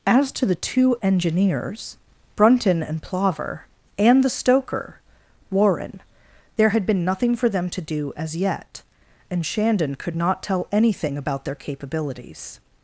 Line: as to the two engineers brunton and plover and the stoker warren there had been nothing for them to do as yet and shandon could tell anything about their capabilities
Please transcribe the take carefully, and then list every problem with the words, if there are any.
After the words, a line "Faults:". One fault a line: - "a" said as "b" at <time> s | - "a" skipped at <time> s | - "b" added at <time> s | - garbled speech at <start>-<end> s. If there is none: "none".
as to the two engineers brunton and plover and the stoker warren there had been nothing for them to do as yet and shandon could not tell anything about their capabilities
Faults:
- "not" added at 10.2 s